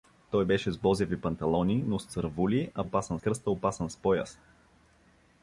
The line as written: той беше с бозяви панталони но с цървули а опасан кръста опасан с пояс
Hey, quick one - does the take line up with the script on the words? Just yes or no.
yes